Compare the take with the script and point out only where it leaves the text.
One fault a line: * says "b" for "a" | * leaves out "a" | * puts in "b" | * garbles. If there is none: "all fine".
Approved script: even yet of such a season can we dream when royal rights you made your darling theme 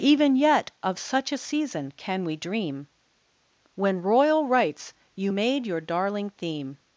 all fine